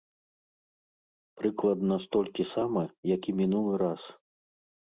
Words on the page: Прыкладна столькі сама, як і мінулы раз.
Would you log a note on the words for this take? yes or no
no